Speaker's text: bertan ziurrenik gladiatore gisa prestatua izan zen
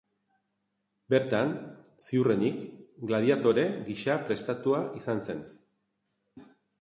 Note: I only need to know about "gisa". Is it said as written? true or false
true